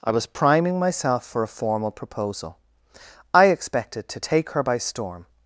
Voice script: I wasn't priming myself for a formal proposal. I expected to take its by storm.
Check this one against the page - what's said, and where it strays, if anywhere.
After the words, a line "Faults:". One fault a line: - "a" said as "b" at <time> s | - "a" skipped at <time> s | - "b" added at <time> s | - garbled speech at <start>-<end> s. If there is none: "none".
I was priming myself for a formal proposal. I expected to take her by storm.
Faults:
- "wasn't" said as "was" at 0.1 s
- "its" said as "her" at 4.5 s